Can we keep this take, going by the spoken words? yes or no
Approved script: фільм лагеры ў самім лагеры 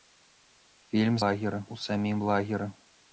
yes